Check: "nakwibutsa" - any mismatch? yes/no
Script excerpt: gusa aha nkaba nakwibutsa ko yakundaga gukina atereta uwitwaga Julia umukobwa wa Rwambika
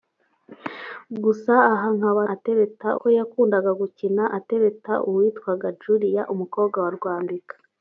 yes